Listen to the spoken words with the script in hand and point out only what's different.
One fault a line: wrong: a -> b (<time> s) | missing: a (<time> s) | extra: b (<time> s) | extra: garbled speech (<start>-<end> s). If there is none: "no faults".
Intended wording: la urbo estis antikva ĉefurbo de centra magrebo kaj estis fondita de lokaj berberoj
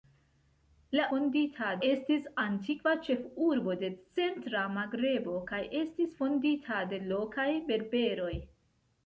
wrong: urbo -> fondita (1.2 s)